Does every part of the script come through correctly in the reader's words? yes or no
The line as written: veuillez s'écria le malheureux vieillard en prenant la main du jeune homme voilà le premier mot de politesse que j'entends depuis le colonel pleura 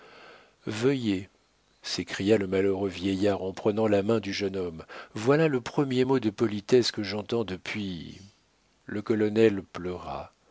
yes